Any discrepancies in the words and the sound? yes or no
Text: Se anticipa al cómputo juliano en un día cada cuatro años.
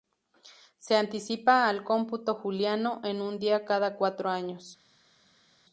no